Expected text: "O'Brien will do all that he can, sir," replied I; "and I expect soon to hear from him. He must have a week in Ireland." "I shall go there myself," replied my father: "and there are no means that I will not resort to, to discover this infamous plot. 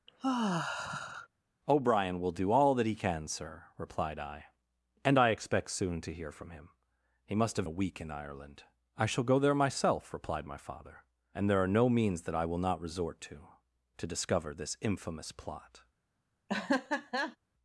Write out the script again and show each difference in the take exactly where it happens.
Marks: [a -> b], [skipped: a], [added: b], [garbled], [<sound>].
[sigh] "O'Brien will do all that he can, sir," replied I; "and I expect soon to hear from him. He must have a week in Ireland." "I shall go there myself," replied my father: "and there are no means that I will not resort to, to discover this infamous plot. [laugh]